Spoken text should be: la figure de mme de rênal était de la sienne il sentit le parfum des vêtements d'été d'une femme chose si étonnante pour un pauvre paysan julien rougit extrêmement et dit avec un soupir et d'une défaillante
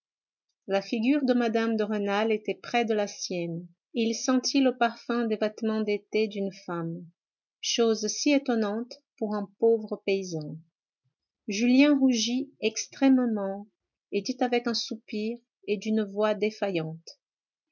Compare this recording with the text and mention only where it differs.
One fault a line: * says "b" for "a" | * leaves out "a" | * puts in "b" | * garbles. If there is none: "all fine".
* puts in "près"
* puts in "voix"